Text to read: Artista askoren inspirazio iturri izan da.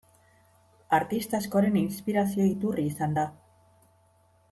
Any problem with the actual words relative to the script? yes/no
no